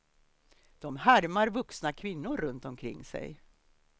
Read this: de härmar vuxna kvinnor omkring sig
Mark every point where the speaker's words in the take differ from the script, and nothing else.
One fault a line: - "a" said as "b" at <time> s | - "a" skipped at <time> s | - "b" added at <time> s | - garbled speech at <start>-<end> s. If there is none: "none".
- "runt" added at 2.4 s